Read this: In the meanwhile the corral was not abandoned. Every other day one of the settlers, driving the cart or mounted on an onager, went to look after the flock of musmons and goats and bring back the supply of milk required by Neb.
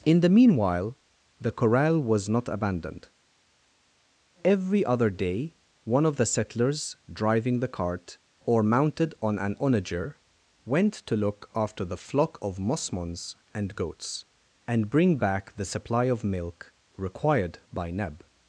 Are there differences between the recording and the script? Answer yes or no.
no